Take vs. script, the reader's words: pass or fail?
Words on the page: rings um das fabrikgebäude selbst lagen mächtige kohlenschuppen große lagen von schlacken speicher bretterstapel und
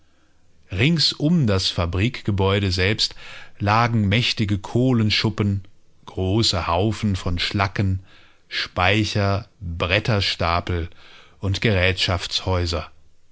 fail